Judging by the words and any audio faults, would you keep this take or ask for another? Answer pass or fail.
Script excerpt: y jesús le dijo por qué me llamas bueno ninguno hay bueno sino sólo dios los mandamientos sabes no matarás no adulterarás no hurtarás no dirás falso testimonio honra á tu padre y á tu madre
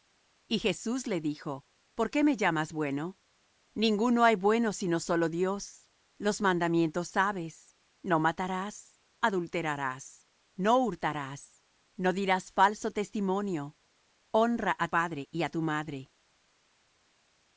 fail